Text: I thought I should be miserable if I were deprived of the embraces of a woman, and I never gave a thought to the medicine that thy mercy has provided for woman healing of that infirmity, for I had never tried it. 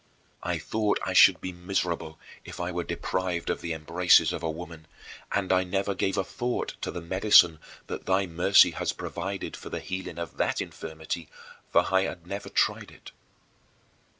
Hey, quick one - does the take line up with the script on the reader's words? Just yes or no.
no